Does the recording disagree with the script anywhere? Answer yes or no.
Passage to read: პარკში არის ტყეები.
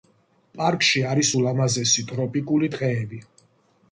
yes